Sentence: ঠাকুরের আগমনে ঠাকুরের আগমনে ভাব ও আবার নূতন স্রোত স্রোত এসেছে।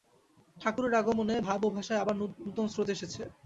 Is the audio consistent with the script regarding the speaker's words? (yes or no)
no